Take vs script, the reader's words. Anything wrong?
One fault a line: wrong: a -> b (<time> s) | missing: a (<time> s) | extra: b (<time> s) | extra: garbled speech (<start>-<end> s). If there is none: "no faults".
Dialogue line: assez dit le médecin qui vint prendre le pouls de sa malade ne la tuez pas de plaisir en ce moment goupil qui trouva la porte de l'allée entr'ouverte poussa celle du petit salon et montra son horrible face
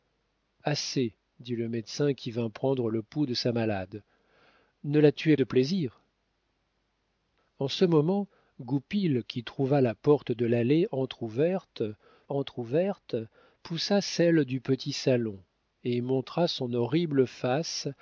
missing: pas (5.4 s)
extra: entr'ouverte (12.3 s)